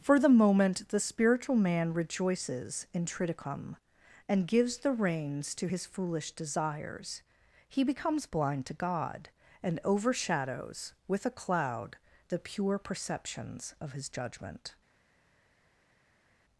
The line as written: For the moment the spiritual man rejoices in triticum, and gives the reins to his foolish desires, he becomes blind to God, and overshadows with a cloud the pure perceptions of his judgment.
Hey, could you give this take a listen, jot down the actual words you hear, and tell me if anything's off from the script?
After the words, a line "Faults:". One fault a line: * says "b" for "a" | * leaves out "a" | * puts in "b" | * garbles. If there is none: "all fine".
For the moment the spiritual man rejoices in triticum, and gives the reins to his foolish desires, he becomes blind to God, and overshadows with a cloud the pure perceptions of his judgment.
Faults:
all fine